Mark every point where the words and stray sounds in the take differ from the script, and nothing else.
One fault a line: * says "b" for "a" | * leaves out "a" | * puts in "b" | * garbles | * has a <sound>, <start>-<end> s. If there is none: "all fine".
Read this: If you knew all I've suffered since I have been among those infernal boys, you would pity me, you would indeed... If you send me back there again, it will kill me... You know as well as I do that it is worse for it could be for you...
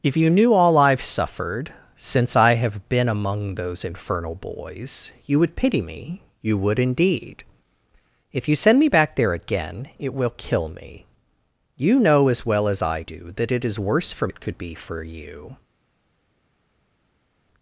all fine